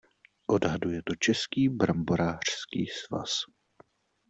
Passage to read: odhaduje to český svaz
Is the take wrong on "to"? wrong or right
right